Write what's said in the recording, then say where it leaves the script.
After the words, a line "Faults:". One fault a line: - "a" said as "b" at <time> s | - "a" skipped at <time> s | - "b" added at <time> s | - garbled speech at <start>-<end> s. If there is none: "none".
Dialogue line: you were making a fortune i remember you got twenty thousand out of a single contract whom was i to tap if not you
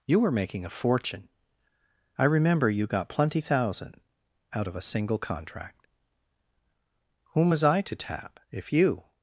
you were making a fortune i remember you got plenty thousand out of a single contract whom was i to tap if you
Faults:
- "twenty" said as "plenty" at 3.1 s
- "not" skipped at 8.7 s